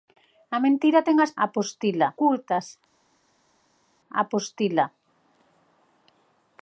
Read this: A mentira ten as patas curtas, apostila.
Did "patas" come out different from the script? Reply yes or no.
yes